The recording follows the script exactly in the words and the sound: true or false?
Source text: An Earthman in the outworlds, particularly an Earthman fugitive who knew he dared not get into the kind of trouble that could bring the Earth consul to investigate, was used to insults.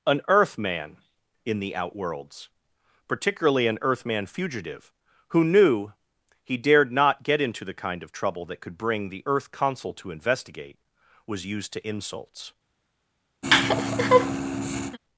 false